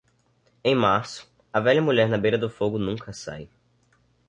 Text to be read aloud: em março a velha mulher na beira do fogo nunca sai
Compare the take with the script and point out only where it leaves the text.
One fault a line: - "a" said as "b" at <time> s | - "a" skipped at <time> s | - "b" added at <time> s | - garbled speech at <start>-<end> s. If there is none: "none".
none